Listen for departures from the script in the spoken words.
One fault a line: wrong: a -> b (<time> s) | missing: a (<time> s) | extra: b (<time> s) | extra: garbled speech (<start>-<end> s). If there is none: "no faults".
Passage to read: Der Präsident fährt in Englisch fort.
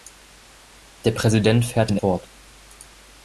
missing: Englisch (2.0 s)